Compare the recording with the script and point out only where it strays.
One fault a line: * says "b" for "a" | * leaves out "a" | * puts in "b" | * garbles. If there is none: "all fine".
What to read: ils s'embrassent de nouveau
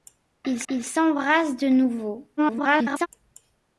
* puts in "ils"
* garbles